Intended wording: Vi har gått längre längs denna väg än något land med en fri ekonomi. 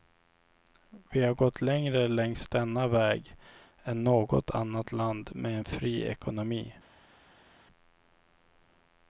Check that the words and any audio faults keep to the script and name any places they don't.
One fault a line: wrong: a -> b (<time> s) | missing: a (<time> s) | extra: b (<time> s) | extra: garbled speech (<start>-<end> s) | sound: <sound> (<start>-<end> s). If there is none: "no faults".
extra: annat (4.5 s)